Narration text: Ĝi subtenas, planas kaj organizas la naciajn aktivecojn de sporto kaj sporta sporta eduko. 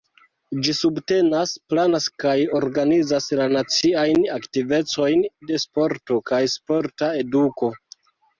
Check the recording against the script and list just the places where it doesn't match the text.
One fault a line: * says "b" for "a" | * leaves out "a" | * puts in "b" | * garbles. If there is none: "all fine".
* leaves out "sporta"